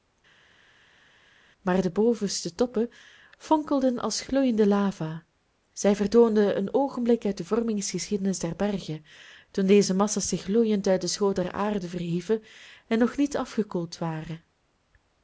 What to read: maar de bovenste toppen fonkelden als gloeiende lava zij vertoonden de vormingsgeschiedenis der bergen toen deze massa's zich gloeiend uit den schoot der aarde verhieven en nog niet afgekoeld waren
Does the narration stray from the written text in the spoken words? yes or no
yes